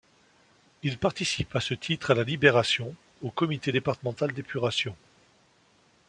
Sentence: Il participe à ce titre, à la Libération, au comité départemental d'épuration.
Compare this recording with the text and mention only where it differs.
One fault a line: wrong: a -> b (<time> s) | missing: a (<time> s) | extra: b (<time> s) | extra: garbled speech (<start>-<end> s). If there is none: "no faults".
no faults